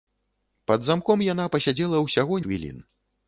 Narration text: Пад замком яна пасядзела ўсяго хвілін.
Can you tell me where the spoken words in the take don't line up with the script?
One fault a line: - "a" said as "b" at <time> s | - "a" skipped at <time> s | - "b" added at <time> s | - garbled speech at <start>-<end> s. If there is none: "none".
none